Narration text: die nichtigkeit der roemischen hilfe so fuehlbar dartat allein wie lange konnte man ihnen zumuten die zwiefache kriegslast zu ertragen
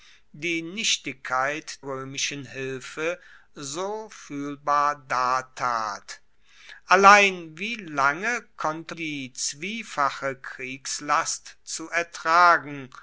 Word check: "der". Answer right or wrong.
wrong